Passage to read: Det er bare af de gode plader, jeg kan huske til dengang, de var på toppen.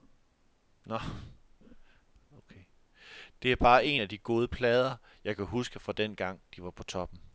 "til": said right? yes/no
no